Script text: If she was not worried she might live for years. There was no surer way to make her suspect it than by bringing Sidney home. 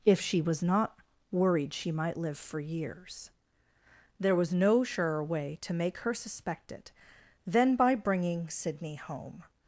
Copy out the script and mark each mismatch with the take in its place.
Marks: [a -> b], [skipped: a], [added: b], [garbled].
If she was not worried she might live for years. There was no surer way to make her suspect it than by bringing Sidney home.